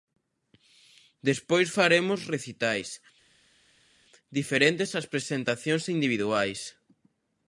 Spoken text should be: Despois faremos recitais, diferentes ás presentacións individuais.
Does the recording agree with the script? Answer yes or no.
yes